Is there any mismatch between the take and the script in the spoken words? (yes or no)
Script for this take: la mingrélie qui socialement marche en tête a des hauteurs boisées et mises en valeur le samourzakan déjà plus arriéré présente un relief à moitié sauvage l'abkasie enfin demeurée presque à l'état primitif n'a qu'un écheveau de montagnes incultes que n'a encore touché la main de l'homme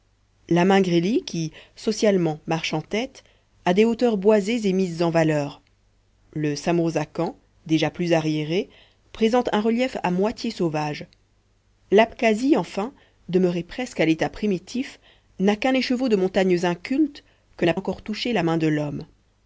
no